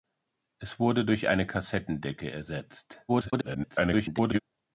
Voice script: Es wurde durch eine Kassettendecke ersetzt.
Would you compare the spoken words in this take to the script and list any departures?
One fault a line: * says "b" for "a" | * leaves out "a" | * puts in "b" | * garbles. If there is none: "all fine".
* garbles